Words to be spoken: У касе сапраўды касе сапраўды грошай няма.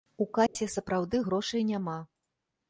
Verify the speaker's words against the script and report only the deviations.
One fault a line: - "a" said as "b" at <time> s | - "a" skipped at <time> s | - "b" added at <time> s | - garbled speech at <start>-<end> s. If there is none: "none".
- "касе сапраўды" skipped at 1.2 s